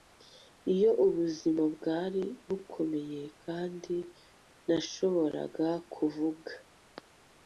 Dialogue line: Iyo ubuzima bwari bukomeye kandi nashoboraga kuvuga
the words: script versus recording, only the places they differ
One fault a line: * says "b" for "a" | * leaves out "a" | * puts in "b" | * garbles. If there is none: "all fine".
all fine